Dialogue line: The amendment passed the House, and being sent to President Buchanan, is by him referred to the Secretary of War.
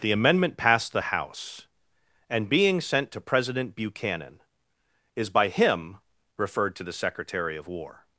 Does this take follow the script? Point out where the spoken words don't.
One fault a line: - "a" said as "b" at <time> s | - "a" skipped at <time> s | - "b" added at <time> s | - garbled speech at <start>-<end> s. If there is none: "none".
none